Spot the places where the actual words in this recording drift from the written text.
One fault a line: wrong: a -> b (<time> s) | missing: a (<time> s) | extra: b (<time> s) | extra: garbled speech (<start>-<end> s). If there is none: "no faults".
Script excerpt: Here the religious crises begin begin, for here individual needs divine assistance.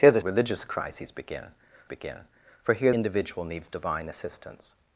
no faults